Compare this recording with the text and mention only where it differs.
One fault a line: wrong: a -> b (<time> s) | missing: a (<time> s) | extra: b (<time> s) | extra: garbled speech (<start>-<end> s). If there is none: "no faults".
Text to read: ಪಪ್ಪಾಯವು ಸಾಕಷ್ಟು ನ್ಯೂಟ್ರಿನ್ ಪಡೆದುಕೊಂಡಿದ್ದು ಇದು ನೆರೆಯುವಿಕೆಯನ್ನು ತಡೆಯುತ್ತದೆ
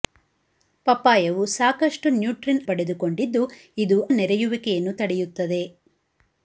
no faults